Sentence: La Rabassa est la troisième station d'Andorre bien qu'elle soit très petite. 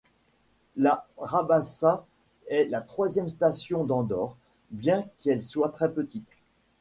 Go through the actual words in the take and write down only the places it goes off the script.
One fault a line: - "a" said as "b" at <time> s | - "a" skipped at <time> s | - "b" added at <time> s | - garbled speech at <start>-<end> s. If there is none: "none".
none